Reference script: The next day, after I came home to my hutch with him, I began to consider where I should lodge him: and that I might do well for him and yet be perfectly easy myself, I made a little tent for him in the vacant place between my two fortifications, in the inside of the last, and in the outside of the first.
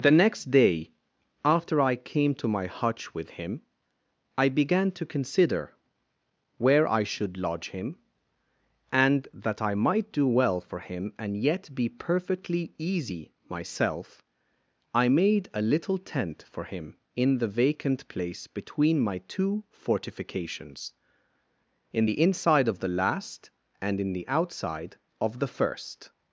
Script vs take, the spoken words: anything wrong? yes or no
yes